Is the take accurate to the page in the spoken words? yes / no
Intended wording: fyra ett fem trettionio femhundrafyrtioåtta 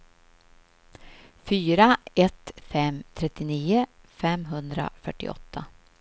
yes